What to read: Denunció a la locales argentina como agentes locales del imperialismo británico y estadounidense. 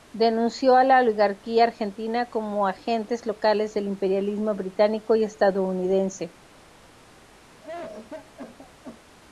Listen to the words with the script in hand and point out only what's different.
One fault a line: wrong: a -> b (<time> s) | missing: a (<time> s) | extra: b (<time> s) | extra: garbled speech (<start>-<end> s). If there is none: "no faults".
wrong: locales -> oligarquía (1.0 s)